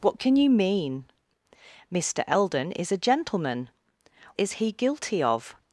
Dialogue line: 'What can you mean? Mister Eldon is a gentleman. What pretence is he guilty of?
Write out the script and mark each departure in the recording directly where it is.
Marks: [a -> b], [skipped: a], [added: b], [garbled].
'What can you mean? Mister Eldon is a gentleman. [skipped: What pretence] is he guilty of?